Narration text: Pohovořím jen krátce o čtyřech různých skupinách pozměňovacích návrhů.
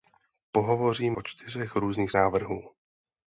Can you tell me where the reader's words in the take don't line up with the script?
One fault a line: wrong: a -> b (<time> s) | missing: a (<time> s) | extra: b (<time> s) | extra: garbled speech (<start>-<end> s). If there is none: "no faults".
missing: jen krátce (1.2 s)
missing: skupinách pozměňovacích (2.1 s)